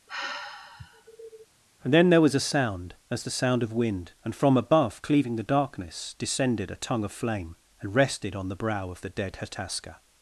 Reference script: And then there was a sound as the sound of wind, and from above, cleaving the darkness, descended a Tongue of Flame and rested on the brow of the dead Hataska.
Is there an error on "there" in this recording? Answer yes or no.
no